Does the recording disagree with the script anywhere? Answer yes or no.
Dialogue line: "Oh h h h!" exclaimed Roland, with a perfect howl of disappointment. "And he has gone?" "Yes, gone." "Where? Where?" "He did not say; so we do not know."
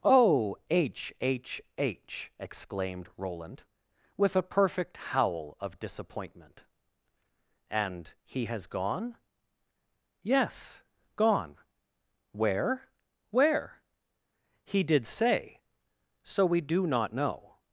yes